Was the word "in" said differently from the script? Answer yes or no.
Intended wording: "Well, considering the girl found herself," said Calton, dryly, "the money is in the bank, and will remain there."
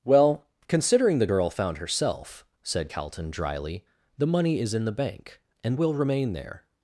no